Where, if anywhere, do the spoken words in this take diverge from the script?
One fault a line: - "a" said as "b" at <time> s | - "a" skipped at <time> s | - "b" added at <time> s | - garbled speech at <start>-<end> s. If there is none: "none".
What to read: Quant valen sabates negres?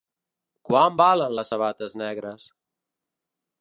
- "les" added at 1.4 s